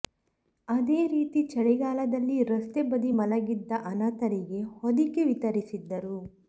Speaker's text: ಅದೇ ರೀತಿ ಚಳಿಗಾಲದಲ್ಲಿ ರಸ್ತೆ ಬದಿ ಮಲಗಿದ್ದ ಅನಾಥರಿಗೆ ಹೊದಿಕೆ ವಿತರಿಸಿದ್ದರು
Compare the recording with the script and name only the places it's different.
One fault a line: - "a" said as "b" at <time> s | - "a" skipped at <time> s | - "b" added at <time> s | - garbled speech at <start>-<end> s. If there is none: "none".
none